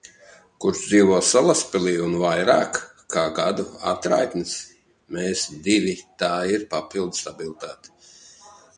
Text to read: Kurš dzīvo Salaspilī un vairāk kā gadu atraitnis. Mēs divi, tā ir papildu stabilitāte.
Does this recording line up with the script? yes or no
yes